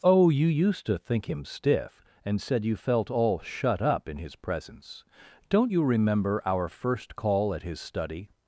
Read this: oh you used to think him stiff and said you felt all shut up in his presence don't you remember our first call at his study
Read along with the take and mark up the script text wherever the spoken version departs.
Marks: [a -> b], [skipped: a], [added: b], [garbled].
oh you used to think him stiff and said you felt all shut up in his presence don't you remember our first call at his study